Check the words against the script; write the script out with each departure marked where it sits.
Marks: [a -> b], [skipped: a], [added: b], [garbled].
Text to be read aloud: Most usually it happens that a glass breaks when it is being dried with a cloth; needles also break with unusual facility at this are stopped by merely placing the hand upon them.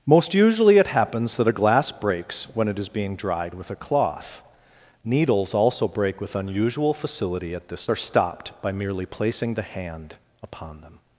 Most usually it happens that a glass breaks when it is being dried with a cloth; needles also break with unusual facility at this are stopped by merely placing the hand upon them.